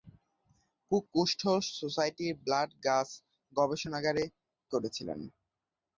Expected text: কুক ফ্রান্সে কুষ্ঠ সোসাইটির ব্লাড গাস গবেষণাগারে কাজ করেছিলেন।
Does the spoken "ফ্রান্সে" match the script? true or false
false